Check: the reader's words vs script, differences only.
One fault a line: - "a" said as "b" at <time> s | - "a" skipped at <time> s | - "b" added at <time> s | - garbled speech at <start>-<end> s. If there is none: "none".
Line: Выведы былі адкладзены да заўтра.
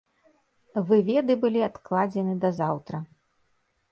none